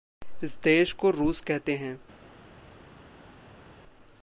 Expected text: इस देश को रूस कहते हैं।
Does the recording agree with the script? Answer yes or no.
yes